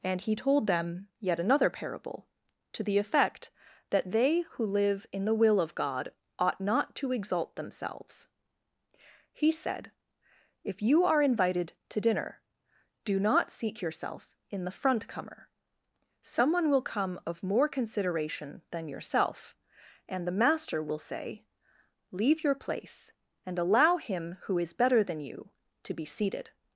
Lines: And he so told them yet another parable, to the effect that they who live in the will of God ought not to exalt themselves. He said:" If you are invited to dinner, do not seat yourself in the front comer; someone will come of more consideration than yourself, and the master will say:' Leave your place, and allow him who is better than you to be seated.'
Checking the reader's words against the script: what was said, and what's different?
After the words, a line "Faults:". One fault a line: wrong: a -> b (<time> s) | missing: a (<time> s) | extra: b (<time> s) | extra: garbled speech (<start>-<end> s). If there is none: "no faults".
And he told them yet another parable, to the effect that they who live in the will of God ought not to exalt themselves. He said:" If you are invited to dinner, do not seat yourself in the front comer; someone will come of more consideration than yourself, and the master will say:' Leave your place, and allow him who is better than you to be seated.'
Faults:
missing: so (0.3 s)